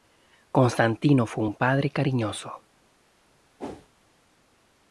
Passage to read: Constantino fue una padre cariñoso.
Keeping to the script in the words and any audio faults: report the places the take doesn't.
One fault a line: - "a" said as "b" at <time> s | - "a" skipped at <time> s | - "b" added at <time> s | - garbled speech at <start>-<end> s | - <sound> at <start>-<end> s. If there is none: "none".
- "una" said as "un" at 1.4 s
- whoosh at 3.6-3.9 s